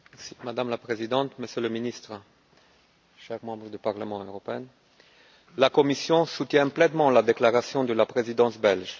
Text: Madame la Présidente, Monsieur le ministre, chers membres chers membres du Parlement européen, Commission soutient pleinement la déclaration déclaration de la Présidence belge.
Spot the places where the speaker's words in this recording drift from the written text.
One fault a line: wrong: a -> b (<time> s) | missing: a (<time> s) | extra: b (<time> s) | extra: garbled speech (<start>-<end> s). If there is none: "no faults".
missing: chers membres (3.7 s)
extra: la (5.6 s)
missing: déclaration (7.8 s)